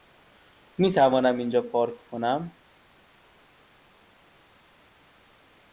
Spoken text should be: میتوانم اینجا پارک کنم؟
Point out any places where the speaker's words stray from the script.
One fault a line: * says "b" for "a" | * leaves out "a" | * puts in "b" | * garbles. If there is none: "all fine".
all fine